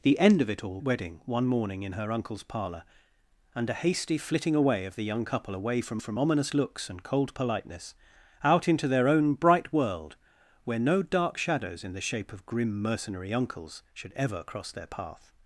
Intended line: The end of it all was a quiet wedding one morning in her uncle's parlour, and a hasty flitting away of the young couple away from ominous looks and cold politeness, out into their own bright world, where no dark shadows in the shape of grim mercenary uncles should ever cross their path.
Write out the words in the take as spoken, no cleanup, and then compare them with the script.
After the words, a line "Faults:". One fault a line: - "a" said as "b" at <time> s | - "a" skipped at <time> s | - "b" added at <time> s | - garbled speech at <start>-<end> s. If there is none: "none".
The end of it all wedding one morning in her uncle's parlour, and a hasty flitting away of the young couple away from from ominous looks and cold politeness, out into their own bright world, where no dark shadows in the shape of grim mercenary uncles should ever cross their path.
Faults:
- "was a quiet" skipped at 0.8 s
- "from" added at 6.0 s